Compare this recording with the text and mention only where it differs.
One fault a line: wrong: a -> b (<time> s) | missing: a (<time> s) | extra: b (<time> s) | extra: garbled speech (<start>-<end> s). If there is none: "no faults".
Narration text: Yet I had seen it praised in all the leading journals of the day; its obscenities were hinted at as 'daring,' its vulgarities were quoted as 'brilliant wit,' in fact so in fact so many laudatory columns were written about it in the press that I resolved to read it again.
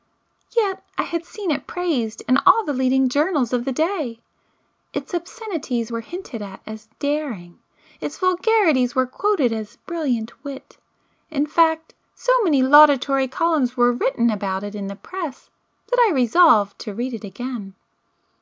missing: in fact so (12.3 s)